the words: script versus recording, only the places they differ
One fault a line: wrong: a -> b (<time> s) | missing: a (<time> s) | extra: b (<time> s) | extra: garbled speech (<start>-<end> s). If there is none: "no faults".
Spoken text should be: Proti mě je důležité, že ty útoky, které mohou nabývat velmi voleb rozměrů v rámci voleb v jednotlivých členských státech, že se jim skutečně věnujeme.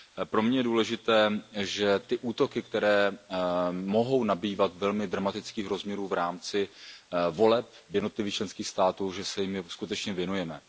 wrong: Proti -> Pro (0.2 s)
wrong: voleb -> dramatických (5.1 s)